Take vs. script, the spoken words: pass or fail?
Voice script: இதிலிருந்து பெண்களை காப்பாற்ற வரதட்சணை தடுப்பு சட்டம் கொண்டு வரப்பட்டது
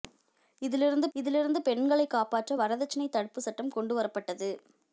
fail